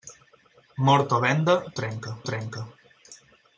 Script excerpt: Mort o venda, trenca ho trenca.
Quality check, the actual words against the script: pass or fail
pass